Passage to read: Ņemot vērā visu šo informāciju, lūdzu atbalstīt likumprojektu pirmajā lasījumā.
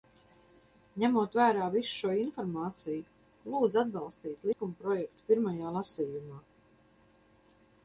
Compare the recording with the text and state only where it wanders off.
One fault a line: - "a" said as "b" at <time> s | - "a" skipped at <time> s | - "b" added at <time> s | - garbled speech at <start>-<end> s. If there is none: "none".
none